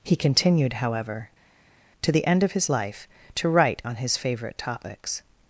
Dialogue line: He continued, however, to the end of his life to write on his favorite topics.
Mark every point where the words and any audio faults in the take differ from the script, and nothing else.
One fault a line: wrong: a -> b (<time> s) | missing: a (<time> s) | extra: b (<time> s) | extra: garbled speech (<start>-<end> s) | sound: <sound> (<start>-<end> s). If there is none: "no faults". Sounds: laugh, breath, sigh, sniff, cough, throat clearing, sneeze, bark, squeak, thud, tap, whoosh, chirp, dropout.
no faults